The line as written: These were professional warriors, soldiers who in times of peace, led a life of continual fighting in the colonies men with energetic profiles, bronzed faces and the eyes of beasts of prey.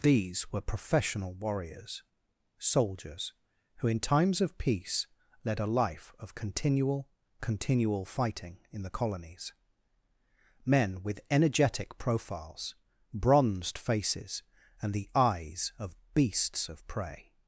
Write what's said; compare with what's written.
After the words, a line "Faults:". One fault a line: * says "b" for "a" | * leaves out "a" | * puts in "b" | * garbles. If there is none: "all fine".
These were professional warriors, soldiers who in times of peace, led a life of continual continual fighting in the colonies men with energetic profiles, bronzed faces and the eyes of beasts of prey.
Faults:
* puts in "continual"